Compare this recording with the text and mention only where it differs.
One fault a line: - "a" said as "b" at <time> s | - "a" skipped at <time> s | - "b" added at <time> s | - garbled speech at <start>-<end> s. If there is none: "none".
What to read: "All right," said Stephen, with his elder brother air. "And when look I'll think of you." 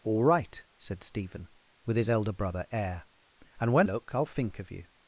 none